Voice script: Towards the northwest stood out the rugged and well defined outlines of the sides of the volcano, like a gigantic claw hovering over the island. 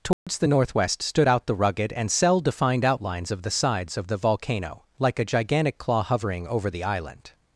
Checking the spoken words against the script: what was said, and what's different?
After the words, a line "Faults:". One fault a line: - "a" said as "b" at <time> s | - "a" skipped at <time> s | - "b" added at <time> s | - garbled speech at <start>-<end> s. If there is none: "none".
Towards the northwest stood out the rugged and cell defined outlines of the sides of the volcano, like a gigantic claw hovering over the island.
Faults:
- "well" said as "cell" at 2.1 s